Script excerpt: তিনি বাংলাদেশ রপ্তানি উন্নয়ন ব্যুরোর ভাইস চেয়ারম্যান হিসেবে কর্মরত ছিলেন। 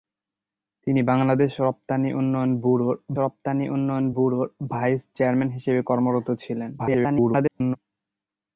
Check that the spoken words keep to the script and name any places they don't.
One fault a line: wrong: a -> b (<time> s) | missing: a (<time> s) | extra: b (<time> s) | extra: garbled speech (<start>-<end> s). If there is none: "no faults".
extra: রপ্তানি উন্নয়ন ব্যুরোর (3.2 s)
extra: garbled speech (6.8-7.8 s)